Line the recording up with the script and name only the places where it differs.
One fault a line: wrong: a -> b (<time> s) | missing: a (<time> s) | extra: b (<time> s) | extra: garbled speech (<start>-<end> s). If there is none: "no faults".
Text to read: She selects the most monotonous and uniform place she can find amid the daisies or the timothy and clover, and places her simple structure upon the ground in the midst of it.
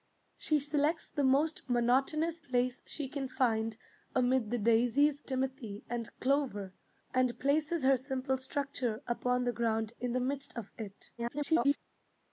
missing: and uniform (2.4 s)
missing: or the (5.2 s)
extra: garbled speech (11.2-11.8 s)